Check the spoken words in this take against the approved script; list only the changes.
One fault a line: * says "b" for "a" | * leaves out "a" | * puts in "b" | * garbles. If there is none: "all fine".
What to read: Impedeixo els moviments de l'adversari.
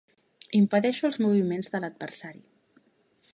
all fine